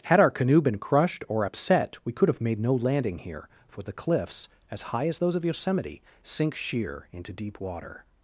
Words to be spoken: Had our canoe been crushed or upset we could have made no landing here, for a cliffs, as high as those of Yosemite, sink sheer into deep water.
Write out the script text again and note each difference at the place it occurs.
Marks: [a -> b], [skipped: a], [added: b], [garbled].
Had our canoe been crushed or upset we could have made no landing here, for [a -> the] cliffs, as high as those of Yosemite, sink sheer into deep water.